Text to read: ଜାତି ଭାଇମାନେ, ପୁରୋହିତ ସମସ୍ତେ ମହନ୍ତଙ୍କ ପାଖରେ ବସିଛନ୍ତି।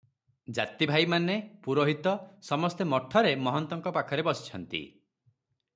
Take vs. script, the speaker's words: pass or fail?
fail